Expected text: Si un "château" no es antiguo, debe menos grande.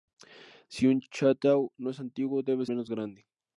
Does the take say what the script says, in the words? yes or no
yes